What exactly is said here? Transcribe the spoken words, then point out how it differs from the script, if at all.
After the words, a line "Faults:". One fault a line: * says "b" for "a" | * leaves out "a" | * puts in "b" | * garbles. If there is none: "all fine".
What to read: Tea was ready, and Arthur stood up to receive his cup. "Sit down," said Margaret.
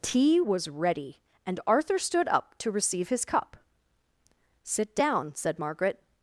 Tea was ready, and Arthur stood up to receive his cup. "Sit down," said Margaret.
Faults:
all fine